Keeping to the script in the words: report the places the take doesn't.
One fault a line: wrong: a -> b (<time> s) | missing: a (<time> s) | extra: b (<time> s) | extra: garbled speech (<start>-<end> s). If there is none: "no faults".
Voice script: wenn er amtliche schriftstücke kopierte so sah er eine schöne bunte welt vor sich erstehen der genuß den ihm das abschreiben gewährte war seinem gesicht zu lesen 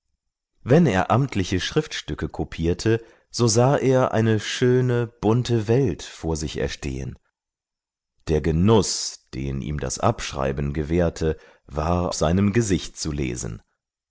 no faults